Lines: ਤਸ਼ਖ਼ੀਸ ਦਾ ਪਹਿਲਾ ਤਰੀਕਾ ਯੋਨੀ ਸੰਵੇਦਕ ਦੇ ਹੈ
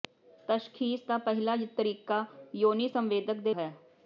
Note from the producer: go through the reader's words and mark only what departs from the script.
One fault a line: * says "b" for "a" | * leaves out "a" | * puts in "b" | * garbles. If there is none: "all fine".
all fine